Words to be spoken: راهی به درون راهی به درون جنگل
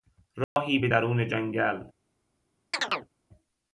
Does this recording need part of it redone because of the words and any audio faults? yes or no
yes